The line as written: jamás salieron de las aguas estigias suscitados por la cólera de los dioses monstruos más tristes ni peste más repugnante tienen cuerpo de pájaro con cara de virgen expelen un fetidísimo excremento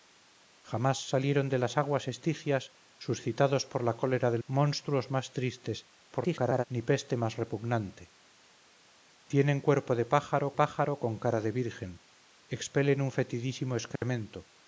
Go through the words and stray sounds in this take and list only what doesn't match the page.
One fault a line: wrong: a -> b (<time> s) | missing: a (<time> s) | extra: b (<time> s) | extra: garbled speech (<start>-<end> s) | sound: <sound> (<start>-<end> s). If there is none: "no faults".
missing: los dioses (4.4 s)
extra: garbled speech (6.1-6.6 s)
extra: pájaro (10.5 s)
sound: dropout (14.0-14.0 s)